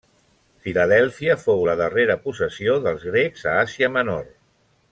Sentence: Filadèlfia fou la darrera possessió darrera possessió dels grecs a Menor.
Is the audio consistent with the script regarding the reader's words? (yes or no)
no